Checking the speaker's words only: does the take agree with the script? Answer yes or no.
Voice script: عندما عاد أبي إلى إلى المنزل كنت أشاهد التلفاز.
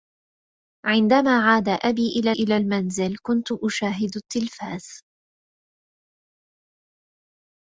yes